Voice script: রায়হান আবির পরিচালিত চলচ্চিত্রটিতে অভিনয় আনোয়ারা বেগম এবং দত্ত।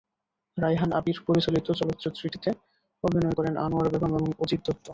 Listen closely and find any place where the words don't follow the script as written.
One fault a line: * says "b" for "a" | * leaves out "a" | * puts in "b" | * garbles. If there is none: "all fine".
* puts in "করেন"
* puts in "অজিত"